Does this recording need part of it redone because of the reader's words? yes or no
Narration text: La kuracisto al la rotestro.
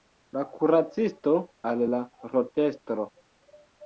no